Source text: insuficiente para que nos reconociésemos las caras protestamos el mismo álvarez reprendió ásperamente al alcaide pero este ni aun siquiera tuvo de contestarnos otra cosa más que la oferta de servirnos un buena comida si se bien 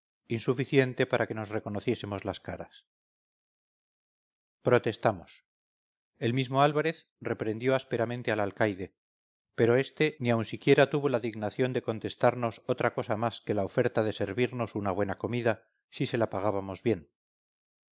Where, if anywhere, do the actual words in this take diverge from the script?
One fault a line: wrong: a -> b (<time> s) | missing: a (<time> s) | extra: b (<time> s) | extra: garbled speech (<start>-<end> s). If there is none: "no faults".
extra: la dignación (11.1 s)
wrong: un -> una (14.8 s)
extra: la pagábamos (16.2 s)